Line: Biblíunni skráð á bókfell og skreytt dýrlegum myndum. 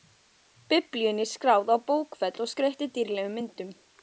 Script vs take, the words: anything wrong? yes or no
no